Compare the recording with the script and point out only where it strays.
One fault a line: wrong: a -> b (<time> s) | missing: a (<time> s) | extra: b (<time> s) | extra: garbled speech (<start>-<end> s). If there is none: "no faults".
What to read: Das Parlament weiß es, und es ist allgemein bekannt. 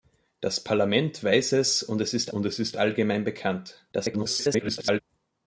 extra: und es ist (2.3 s)
extra: garbled speech (3.9-5.0 s)